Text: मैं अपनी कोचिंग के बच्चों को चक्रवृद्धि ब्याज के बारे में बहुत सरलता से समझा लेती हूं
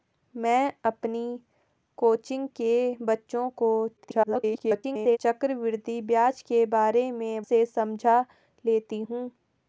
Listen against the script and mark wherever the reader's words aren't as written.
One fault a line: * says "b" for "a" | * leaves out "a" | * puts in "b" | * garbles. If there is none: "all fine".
* garbles
* leaves out "बहुत सरलता"